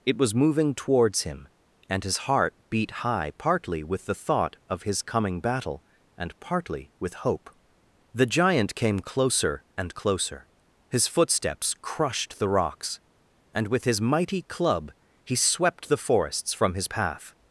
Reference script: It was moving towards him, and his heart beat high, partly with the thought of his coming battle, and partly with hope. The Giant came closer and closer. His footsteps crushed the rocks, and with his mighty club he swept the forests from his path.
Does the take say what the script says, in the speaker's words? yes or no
yes